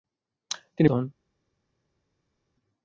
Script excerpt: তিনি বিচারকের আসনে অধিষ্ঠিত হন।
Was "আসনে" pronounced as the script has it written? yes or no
no